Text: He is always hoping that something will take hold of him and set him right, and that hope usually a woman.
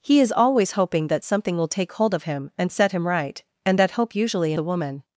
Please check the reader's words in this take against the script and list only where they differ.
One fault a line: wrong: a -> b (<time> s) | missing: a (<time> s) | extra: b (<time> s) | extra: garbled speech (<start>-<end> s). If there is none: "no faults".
no faults